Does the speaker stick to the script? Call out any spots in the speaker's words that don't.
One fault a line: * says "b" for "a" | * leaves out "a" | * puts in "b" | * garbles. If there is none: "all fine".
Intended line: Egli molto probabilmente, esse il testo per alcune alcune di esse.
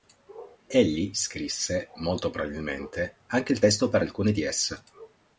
* puts in "scrisse"
* says "anche" for "esse"
* leaves out "alcune"